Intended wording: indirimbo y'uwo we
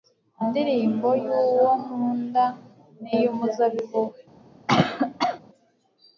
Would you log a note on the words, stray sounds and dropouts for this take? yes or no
yes